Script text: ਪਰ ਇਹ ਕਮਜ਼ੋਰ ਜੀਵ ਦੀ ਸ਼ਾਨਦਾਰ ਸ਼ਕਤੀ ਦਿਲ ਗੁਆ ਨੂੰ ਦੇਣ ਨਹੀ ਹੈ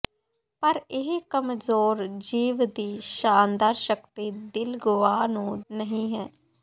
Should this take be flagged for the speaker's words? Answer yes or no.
yes